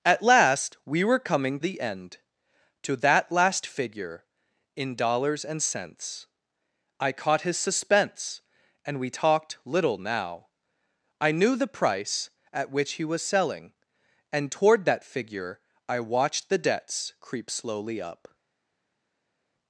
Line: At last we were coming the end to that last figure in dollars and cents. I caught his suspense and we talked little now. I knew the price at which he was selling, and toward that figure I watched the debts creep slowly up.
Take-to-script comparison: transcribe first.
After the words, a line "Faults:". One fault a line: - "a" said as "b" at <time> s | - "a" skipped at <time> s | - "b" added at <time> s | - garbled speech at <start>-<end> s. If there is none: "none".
At last we were coming the end to that last figure in dollars and cents. I caught his suspense and we talked little now. I knew the price at which he was selling, and toward that figure I watched the debts creep slowly up.
Faults:
none